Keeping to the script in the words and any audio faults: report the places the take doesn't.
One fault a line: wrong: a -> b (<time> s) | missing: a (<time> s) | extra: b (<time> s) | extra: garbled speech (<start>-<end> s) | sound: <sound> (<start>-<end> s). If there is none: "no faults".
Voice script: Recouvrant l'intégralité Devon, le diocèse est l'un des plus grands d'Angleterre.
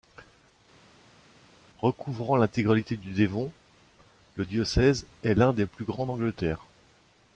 extra: du (3.0 s)